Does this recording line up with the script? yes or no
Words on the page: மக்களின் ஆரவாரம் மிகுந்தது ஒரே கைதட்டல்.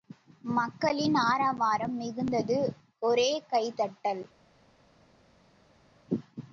yes